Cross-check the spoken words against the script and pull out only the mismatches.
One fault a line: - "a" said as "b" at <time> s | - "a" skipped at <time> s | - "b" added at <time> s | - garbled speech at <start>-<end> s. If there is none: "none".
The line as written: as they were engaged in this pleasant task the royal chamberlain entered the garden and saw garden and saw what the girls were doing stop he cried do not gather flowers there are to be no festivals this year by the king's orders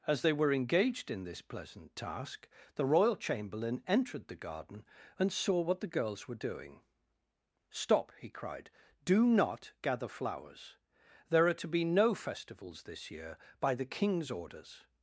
- "garden and saw" skipped at 5.6 s